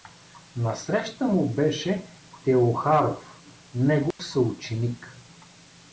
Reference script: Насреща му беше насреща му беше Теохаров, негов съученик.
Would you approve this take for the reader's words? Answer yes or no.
no